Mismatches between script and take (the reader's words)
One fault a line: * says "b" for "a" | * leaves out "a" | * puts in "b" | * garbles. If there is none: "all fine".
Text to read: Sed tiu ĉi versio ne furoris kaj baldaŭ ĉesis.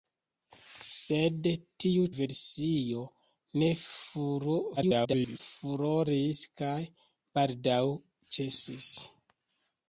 * leaves out "ĉi"
* garbles